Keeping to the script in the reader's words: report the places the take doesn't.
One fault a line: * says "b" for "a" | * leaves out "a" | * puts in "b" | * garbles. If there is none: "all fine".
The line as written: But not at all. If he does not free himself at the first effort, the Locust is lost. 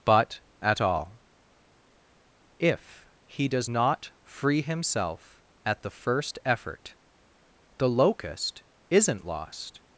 * leaves out "not"
* says "isn't" for "is"